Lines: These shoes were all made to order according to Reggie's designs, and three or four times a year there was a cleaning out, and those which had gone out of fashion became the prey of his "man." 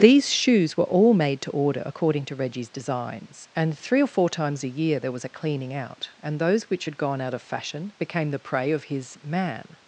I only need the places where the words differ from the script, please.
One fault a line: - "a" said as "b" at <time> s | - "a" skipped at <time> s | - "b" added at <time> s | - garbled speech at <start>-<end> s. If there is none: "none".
none